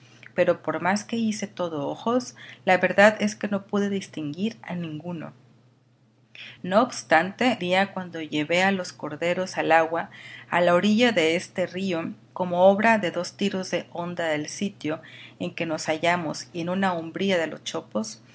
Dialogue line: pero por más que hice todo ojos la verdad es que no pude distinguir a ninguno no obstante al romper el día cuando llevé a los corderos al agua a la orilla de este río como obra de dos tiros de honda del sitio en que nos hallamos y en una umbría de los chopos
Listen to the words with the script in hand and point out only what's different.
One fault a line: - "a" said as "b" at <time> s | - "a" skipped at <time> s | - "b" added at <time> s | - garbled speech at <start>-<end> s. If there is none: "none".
- "al romper el" skipped at 7.6 s